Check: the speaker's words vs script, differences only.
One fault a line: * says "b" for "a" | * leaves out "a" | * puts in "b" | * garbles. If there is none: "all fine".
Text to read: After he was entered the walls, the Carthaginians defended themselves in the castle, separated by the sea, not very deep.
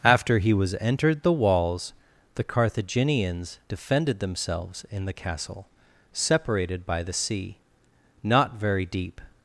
all fine